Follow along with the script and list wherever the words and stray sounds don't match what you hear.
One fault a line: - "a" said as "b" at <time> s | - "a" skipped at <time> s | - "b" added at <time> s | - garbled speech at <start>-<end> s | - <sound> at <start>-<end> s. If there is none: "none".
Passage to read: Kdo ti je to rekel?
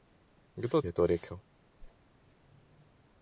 - "ti" skipped at 0.8 s
- whoosh at 1.8-2.0 s